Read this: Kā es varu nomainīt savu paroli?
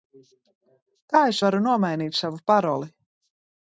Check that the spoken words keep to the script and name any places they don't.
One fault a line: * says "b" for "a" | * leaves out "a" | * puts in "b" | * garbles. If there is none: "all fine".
all fine